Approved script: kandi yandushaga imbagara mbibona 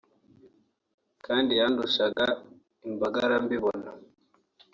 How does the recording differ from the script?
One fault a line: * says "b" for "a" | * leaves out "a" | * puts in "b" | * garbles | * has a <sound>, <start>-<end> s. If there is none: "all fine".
* has a dropout, 2.1-2.2 s